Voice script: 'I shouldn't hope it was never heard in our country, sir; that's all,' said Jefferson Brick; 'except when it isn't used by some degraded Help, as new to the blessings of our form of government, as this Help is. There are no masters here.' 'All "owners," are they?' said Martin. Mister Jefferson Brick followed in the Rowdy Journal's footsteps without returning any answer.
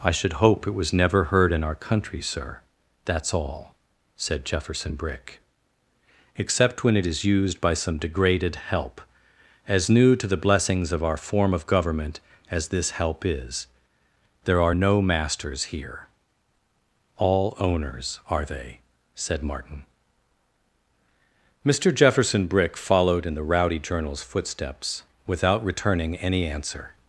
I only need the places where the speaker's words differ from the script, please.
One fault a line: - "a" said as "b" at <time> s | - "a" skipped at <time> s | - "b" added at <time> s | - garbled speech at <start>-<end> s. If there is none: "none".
- "shouldn't" said as "should" at 0.1 s
- "isn't" said as "is" at 7.0 s